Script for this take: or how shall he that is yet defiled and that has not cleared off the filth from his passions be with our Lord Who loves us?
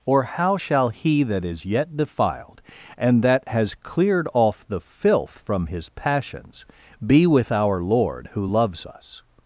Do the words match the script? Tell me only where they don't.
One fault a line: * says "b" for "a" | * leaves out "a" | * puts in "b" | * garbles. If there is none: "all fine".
* leaves out "not"